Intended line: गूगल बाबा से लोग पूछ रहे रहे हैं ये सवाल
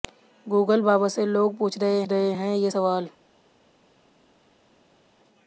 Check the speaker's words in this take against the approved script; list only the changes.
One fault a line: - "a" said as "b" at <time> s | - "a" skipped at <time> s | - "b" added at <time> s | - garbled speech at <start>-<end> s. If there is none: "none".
none